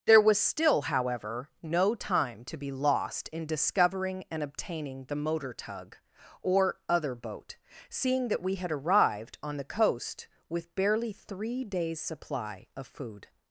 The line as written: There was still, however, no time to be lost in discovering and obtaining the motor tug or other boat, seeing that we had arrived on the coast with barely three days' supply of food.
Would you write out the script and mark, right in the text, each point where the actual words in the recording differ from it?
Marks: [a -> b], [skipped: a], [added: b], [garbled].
There was still, however, no time to be lost in discovering and obtaining the motor tug or other boat, seeing that we had arrived on the coast with barely three days' supply of food.